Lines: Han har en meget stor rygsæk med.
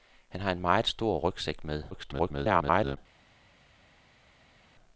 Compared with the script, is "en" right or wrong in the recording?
right